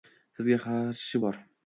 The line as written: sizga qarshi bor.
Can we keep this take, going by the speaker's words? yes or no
yes